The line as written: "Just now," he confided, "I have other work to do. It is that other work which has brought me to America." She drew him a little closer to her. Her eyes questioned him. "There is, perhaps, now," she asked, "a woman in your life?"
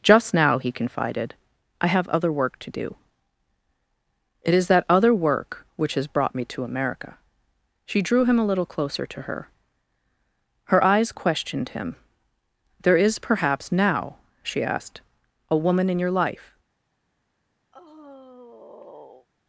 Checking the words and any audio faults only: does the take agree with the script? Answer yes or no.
no